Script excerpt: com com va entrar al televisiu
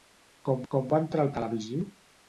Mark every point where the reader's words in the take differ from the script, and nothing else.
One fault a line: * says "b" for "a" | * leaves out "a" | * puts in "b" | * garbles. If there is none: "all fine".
all fine